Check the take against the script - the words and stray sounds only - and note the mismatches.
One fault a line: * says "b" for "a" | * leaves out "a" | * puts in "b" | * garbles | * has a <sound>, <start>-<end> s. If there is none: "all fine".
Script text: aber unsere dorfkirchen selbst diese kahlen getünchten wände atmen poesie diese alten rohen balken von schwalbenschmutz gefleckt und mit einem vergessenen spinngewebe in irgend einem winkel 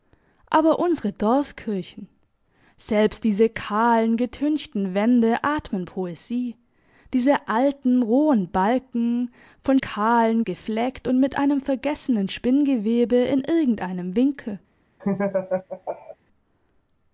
* says "kahlen" for "schwalbenschmutz"
* has a laugh, 15.0-16.2 s